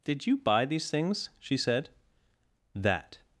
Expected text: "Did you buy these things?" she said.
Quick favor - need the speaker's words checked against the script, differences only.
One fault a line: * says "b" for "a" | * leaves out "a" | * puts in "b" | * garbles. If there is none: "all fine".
* puts in "That"